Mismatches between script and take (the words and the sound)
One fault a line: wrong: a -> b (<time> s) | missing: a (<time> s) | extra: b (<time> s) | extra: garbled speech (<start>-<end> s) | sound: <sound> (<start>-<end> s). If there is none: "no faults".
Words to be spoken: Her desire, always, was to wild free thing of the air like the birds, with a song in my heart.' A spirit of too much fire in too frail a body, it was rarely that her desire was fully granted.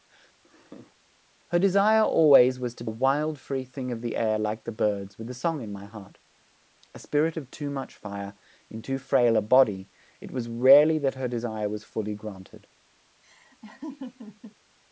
sound: laugh (0.4-1.0 s)
sound: laugh (13.2-14.6 s)